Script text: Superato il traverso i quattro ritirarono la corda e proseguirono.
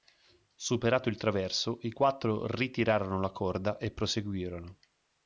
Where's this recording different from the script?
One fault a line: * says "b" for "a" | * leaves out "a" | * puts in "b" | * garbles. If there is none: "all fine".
all fine